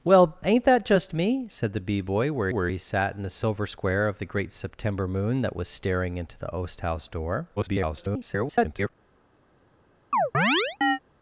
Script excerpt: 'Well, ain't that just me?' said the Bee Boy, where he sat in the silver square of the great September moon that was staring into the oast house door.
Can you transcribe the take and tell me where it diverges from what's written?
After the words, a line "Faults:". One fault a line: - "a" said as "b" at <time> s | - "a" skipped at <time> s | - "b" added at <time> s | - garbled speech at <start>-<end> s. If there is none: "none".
'Well, ain't that just me?' said the Bee Boy, where where he sat in the silver square of the great September moon that was staring into the oast house door. [garbled]
Faults:
- "where" added at 2.5 s
- garbled speech at 7.6-8.9 s